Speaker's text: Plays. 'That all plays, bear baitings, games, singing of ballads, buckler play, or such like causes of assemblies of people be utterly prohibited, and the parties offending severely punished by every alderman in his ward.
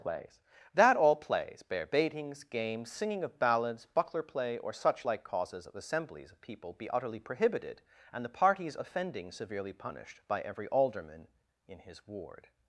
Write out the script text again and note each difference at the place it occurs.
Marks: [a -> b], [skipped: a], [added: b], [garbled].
Plays. 'That all plays, bear baitings, games, singing of ballads, buckler play, or such like causes of assemblies of people be utterly prohibited, and the parties offending severely punished by every alderman in his ward.